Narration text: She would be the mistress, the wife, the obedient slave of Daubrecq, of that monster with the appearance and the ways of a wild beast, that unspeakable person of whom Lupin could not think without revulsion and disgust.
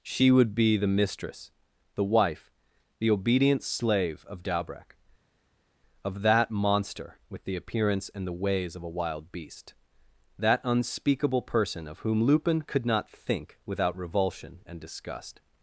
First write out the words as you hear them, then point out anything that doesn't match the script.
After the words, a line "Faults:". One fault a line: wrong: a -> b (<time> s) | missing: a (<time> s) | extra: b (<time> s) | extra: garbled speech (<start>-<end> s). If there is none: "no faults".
She would be the mistress, the wife, the obedient slave of Daubrecq, of that monster with the appearance and the ways of a wild beast, that unspeakable person of whom Lupin could not think without revulsion and disgust.
Faults:
no faults